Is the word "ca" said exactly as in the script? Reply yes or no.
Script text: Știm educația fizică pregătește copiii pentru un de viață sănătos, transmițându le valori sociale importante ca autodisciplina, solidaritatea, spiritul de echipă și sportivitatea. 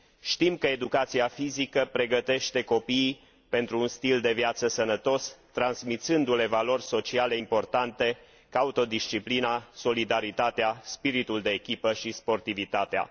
yes